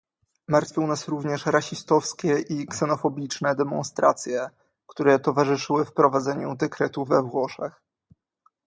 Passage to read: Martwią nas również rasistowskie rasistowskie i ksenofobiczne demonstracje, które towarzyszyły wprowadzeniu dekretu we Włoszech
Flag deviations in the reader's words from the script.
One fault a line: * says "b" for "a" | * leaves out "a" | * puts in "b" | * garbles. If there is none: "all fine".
* leaves out "rasistowskie"